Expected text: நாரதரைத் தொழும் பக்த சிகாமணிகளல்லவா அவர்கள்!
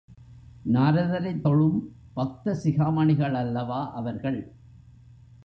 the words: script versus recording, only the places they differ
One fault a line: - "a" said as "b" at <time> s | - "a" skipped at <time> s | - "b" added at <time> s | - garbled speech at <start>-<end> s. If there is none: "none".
none